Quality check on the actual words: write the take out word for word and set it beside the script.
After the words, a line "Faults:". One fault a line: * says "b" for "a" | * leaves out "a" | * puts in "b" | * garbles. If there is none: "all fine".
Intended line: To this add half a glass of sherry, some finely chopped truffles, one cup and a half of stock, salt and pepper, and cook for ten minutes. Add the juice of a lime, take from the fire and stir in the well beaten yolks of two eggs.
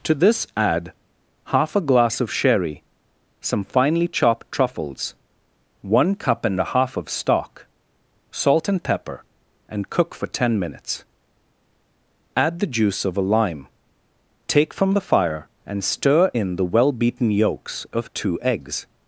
To this add half a glass of sherry, some finely chopped truffles, one cup and a half of stock, salt and pepper, and cook for ten minutes. Add the juice of a lime, take from the fire and stir in the well beaten yolks of two eggs.
Faults:
all fine